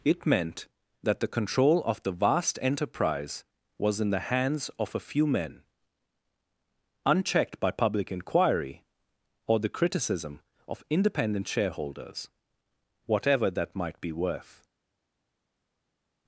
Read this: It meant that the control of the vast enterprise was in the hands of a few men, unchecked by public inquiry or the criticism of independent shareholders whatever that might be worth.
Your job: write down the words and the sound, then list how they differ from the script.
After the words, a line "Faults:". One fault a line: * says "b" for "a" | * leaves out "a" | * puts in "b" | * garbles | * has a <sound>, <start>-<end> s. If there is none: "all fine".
It meant that the control of the vast enterprise was in the hands of a few men, unchecked by public inquiry or the criticism of independent shareholders whatever that might be worth.
Faults:
all fine